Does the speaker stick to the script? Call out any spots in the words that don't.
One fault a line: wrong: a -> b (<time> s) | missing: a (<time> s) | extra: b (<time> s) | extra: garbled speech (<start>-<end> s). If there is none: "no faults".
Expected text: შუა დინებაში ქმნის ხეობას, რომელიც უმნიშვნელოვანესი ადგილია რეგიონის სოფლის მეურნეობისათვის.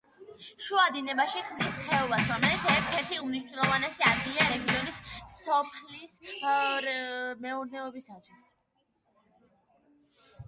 extra: ერთ ერთი (2.8 s)